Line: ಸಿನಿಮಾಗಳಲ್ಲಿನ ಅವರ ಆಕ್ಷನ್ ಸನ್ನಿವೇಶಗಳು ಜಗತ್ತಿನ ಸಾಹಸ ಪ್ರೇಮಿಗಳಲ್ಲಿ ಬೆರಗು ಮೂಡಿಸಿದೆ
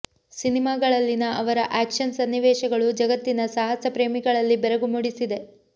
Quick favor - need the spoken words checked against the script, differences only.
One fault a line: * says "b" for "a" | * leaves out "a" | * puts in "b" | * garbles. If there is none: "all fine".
all fine